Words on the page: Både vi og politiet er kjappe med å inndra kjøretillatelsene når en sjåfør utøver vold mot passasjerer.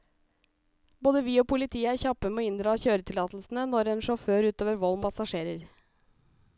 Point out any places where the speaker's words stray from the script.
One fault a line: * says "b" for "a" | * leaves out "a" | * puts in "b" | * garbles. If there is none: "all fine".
* leaves out "mot"